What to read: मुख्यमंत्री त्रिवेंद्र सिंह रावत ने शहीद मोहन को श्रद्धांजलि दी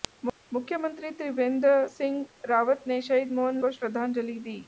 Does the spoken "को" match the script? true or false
true